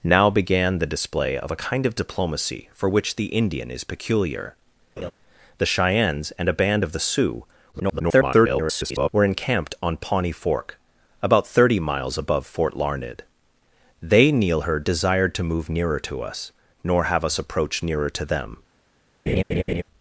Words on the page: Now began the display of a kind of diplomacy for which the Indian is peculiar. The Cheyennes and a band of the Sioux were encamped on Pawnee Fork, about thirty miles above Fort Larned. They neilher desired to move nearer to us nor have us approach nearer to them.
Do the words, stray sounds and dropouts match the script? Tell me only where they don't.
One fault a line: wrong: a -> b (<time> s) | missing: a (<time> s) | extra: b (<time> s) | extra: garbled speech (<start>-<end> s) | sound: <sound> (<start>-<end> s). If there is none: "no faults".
sound: laugh (5.0-5.1 s)
extra: garbled speech (7.7-9.1 s)
sound: laugh (19.3-19.8 s)